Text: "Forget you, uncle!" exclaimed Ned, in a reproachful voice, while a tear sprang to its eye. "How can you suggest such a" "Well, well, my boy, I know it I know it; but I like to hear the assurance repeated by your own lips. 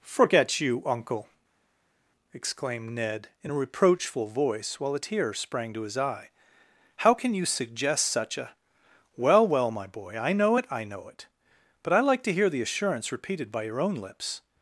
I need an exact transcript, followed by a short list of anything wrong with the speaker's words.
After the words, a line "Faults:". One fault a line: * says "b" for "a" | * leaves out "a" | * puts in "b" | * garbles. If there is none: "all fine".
"Forget you, uncle!" exclaimed Ned, in a reproachful voice, while a tear sprang to his eye. "How can you suggest such a" "Well, well, my boy, I know it I know it; but I like to hear the assurance repeated by your own lips.
Faults:
* says "his" for "its"